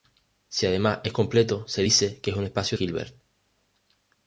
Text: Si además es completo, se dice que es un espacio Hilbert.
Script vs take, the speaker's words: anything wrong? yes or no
no